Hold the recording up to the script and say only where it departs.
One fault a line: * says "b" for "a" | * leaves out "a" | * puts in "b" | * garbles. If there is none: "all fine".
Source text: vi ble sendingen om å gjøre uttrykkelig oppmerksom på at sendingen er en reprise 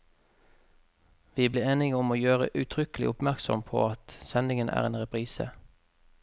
* says "enige" for "sendingen"